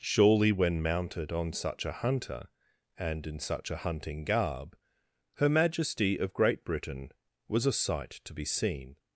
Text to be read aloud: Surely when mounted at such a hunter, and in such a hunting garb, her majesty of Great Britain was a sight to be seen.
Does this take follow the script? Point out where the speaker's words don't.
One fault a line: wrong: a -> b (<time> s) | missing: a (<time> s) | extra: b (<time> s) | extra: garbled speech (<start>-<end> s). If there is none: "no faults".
wrong: at -> on (1.3 s)